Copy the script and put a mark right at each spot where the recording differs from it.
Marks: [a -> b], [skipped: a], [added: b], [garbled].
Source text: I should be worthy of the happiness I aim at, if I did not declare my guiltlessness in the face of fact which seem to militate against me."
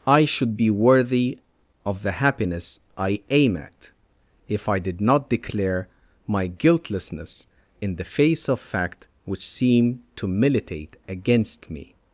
I should be worthy of the happiness I aim at, if I did not declare my guiltlessness in the face of fact which seem to militate against me."